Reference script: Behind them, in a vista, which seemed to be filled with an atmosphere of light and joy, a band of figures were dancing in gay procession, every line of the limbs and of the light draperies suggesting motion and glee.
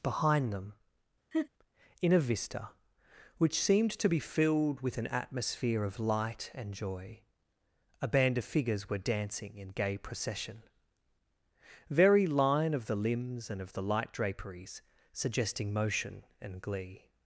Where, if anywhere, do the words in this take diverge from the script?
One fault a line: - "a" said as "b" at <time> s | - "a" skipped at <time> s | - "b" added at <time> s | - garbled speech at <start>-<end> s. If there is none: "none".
- "every" said as "very" at 11.9 s